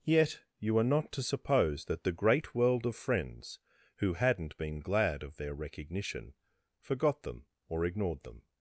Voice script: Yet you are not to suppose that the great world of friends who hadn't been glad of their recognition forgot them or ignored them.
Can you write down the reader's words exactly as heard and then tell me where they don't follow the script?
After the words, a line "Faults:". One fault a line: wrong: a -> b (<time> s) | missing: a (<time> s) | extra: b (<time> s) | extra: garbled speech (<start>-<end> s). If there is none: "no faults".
Yet you are not to suppose that the great world of friends who hadn't been glad of their recognition forgot them or ignored them.
Faults:
no faults